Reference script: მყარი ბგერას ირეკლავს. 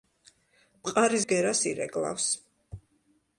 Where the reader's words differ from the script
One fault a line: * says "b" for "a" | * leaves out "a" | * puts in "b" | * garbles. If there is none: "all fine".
all fine